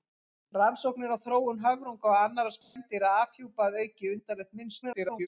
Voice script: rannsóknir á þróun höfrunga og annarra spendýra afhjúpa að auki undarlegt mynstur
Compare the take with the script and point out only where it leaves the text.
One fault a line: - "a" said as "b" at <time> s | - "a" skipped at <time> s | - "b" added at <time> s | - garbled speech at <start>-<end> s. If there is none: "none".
- garbled speech at 4.8-5.3 s